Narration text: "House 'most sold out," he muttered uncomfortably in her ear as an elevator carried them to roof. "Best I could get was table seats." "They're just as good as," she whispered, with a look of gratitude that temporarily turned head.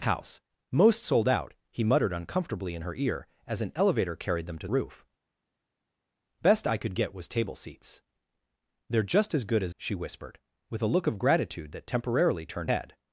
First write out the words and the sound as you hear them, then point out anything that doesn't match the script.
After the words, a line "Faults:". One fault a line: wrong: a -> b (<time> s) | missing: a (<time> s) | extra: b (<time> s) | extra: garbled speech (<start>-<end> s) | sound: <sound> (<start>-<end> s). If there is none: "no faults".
"House 'most sold out," he muttered uncomfortably in her ear as an elevator carried them to roof. "Best I could get was table seats." "They're just as good as," she whispered, with a look of gratitude that temporarily turned head.
Faults:
no faults